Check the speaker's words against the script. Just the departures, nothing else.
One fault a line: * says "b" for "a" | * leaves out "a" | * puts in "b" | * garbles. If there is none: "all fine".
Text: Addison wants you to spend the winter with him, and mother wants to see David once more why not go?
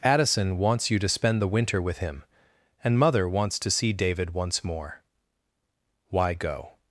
* leaves out "not"